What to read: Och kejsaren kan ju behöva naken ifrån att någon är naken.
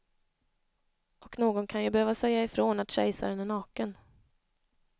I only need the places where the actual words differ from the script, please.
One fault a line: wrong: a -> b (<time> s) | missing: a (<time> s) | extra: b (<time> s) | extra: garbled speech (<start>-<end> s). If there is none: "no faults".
wrong: kejsaren -> någon (1.4 s)
wrong: naken -> säga (2.1 s)
wrong: någon -> kejsaren (2.9 s)